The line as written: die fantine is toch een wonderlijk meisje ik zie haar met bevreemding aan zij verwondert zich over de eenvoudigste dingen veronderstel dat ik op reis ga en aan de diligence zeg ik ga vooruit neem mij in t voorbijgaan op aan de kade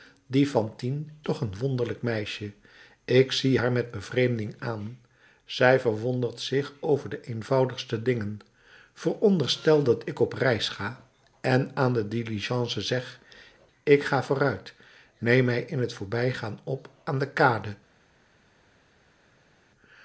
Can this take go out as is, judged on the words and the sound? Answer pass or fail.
fail